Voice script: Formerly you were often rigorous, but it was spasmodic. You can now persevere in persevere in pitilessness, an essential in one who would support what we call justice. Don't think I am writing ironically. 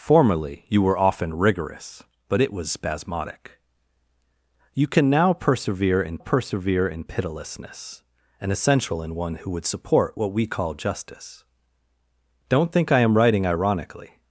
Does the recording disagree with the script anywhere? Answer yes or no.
no